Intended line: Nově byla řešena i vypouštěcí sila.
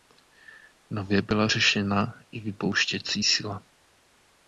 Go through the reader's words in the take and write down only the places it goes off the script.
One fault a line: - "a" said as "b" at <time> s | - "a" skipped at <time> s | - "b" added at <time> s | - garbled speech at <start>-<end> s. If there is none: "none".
none